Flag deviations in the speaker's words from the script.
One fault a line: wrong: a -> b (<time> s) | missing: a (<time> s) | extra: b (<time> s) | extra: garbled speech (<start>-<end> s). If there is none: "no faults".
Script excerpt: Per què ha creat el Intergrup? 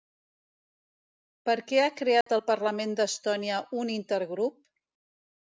extra: Parlament d'Estònia un (2.5 s)